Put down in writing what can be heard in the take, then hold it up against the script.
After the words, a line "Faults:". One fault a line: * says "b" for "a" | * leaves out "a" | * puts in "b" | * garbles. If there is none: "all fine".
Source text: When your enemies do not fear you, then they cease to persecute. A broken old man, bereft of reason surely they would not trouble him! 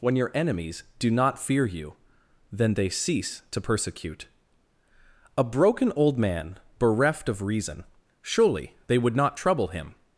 When your enemies do not fear you, then they cease to persecute. A broken old man, bereft of reason surely they would not trouble him!
Faults:
all fine